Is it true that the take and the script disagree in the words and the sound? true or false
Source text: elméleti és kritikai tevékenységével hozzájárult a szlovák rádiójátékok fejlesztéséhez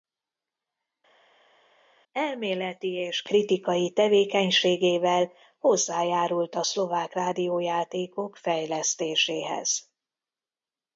false